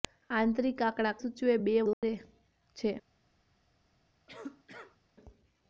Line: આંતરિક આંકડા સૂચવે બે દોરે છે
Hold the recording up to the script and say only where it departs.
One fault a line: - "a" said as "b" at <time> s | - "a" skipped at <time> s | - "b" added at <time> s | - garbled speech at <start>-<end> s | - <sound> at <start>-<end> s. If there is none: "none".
- dropout at 1.9-2.0 s
- cough at 4.3-5.0 s